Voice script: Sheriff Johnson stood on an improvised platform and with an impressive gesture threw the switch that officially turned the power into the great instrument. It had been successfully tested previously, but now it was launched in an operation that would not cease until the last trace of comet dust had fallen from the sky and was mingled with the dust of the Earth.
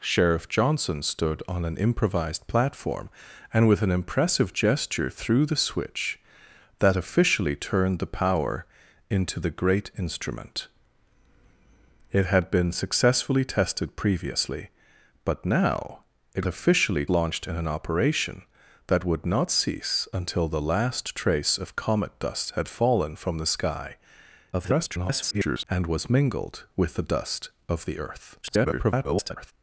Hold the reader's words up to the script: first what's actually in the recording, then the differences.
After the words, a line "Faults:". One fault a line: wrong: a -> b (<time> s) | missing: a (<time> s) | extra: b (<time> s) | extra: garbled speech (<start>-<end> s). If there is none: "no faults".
Sheriff Johnson stood on an improvised platform and with an impressive gesture threw the switch that officially turned the power into the great instrument. It had been successfully tested previously, but now it officially launched in an operation that would not cease until the last trace of comet dust had fallen from the sky [garbled] and was mingled with the dust of the Earth. [garbled]
Faults:
wrong: was -> officially (16.5 s)
extra: garbled speech (24.5-25.6 s)
extra: garbled speech (28.4-29.5 s)